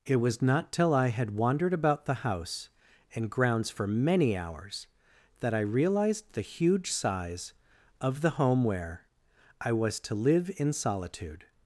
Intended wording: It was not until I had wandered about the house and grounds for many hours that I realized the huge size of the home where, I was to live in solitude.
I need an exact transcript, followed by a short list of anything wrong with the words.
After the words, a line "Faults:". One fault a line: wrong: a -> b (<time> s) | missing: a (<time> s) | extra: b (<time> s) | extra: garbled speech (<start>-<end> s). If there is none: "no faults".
It was not till I had wandered about the house and grounds for many hours that I realized the huge size of the home where, I was to live in solitude.
Faults:
wrong: until -> till (0.7 s)